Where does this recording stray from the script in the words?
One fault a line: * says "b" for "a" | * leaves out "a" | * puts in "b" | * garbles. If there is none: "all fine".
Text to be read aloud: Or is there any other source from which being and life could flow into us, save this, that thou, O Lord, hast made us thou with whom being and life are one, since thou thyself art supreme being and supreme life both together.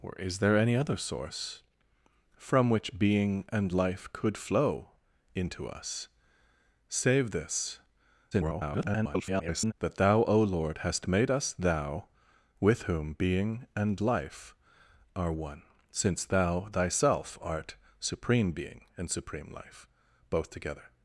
* garbles